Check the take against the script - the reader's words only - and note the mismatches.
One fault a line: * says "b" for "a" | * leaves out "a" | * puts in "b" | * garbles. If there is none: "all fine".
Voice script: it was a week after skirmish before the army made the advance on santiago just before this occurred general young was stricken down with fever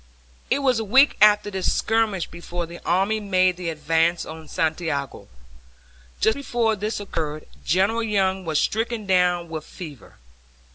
* puts in "this"